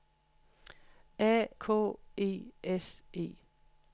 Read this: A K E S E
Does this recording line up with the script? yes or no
yes